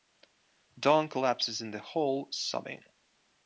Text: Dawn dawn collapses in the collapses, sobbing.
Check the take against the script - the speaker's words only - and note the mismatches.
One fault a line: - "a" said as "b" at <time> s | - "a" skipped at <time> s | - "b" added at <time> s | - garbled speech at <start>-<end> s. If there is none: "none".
- "dawn" skipped at 1.1 s
- "collapses" said as "hall" at 1.8 s